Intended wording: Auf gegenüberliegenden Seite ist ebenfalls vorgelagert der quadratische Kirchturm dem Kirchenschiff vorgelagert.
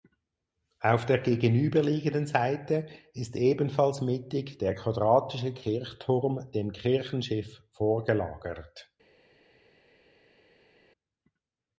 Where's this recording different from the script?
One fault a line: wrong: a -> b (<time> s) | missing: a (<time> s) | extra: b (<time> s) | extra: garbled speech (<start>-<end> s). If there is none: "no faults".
extra: der (1.1 s)
wrong: vorgelagert -> mittig (4.0 s)